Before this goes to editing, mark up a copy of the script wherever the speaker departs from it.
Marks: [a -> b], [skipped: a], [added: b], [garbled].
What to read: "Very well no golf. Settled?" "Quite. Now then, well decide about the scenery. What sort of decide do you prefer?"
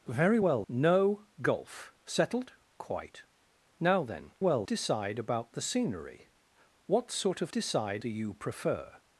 "Very well no golf. Settled?" "Quite. Now then, well decide about the scenery. What sort of decide do you prefer?"